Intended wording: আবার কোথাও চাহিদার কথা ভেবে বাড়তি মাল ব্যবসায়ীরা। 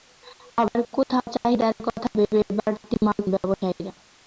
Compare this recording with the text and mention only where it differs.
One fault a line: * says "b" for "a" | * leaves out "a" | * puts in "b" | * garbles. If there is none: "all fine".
all fine